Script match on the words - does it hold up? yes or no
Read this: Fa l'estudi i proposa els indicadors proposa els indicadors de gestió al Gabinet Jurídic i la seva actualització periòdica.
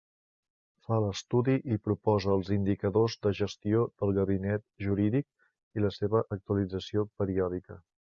no